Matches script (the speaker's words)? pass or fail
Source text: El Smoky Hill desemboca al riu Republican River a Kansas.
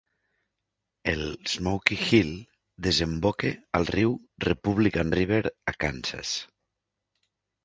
pass